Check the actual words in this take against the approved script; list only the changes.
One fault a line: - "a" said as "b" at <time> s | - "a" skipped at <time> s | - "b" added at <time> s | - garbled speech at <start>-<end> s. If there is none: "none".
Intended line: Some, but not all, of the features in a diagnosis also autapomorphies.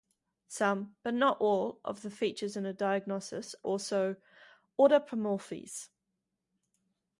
none